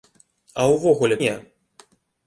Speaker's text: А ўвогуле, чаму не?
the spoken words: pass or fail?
fail